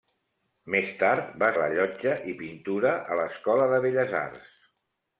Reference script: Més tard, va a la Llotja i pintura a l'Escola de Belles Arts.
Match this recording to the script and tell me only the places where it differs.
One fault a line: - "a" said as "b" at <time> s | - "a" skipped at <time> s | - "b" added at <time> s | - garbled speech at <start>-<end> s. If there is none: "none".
none